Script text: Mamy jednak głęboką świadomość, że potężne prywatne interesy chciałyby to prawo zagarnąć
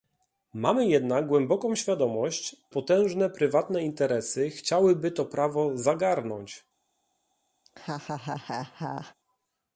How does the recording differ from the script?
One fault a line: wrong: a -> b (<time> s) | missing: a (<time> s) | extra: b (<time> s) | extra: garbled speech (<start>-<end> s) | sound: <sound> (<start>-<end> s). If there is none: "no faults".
missing: że (2.6 s)
sound: laugh (7.7-9.2 s)